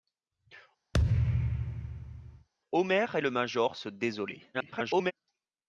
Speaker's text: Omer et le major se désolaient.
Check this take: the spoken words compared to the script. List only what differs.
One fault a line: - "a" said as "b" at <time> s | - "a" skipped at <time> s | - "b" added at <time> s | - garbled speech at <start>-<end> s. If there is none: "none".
- garbled speech at 4.5-5.1 s